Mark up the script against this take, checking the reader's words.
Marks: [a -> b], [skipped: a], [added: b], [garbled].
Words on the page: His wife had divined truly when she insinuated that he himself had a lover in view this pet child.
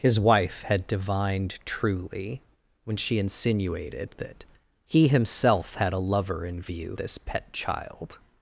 His wife had divined truly when she insinuated that he himself had a lover in view this pet child.